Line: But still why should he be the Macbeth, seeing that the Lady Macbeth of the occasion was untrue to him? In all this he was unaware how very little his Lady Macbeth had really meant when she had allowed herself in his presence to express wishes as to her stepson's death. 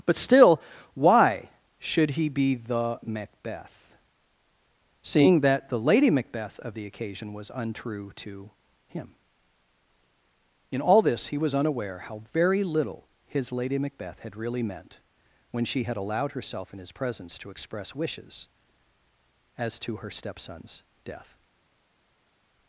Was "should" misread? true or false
false